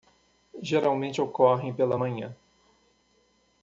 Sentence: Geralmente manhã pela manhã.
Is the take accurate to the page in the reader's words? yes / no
no